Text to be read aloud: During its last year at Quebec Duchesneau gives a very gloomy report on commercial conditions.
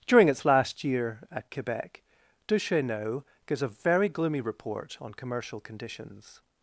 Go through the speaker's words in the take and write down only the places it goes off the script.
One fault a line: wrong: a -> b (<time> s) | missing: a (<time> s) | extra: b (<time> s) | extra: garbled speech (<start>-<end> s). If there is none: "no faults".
no faults